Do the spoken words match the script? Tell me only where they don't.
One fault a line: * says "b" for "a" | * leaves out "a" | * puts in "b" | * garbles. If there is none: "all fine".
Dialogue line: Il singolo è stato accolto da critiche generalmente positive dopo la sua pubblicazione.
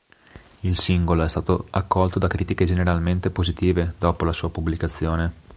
all fine